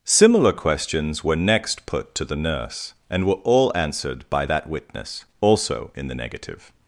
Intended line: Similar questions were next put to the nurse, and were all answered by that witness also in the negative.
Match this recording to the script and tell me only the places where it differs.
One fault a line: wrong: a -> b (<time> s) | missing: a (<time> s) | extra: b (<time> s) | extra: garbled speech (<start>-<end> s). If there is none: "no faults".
no faults